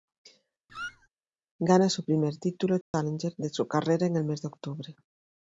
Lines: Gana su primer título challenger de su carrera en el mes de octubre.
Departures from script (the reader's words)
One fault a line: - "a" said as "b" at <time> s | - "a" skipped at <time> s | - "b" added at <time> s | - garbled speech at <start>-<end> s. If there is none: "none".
none